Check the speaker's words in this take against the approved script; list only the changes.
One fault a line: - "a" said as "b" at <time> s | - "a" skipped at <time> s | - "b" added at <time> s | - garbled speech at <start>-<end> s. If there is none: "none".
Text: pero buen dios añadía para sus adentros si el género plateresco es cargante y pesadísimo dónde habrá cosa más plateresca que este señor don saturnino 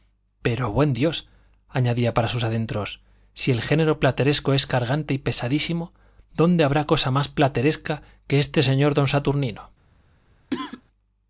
none